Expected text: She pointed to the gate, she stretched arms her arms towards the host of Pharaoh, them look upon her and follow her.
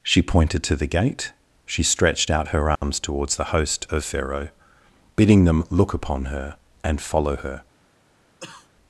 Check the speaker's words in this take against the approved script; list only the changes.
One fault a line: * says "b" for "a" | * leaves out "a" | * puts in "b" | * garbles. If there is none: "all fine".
* says "out" for "arms"
* puts in "bidding"